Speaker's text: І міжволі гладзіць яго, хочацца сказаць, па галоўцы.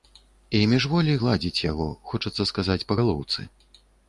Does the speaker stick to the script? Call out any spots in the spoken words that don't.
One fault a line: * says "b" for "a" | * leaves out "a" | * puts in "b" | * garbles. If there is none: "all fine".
all fine